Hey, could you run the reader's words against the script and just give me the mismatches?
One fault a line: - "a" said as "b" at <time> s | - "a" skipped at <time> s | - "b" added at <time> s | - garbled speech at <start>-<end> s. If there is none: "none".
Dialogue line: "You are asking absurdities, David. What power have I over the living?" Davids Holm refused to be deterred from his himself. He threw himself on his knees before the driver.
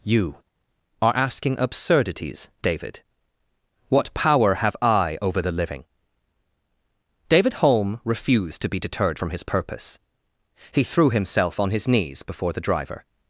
- "Davids" said as "David" at 7.3 s
- "himself" said as "purpose" at 9.4 s